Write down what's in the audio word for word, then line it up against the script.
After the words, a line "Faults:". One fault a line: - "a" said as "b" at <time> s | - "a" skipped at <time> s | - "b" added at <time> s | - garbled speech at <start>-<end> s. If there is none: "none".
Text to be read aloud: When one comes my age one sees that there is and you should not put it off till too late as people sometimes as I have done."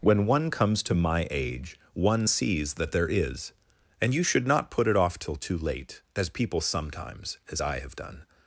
When one comes to my age one sees that there is and you should not put it off till too late as people sometimes as I have done."
Faults:
- "to" added at 0.8 s